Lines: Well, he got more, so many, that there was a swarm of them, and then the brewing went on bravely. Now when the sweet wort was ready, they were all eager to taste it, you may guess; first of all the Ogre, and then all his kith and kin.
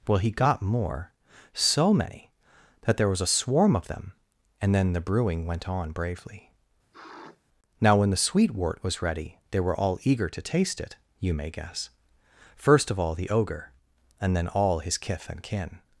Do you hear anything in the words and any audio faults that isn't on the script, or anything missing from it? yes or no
yes